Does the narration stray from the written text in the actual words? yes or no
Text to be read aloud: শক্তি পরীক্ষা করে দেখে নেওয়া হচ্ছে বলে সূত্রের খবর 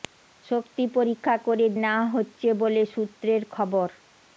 yes